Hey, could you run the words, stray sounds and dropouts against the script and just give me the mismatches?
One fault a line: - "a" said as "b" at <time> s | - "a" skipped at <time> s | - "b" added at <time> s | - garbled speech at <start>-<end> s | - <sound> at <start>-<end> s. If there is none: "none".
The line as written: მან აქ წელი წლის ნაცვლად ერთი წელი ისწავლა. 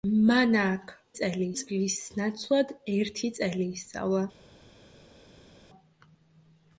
none